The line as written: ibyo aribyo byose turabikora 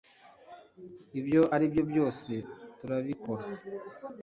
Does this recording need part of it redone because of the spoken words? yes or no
no